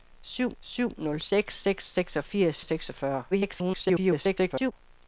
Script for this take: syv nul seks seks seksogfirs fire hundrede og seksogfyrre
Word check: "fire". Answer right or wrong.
wrong